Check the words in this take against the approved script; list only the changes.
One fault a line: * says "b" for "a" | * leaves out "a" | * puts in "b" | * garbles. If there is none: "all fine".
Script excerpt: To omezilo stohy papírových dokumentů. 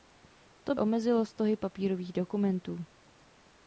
all fine